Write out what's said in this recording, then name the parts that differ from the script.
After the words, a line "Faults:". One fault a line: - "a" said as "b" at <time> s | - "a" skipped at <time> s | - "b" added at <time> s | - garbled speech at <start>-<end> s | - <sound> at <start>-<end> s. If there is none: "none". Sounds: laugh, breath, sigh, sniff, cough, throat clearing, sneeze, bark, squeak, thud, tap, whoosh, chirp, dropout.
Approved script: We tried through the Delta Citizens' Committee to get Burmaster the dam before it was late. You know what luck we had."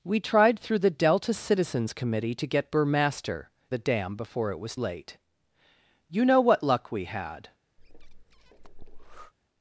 We tried through the Delta Citizens' Committee to get Burmaster the dam before it was late. You know what luck we had."
Faults:
- breath at 7.8-9.3 s